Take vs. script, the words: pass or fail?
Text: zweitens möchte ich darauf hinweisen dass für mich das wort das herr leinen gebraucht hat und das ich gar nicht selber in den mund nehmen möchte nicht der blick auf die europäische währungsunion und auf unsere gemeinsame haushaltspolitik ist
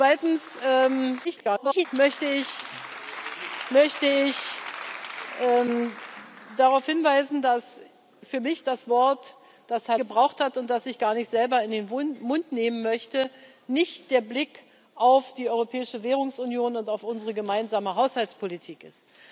fail